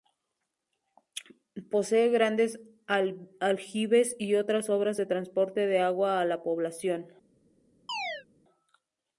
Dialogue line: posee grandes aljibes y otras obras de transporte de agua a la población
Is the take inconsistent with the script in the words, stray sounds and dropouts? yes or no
yes